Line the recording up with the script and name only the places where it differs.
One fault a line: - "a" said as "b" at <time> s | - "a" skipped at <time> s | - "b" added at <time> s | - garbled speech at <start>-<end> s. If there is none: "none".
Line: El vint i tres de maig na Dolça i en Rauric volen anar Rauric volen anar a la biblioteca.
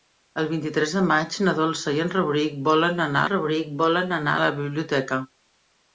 none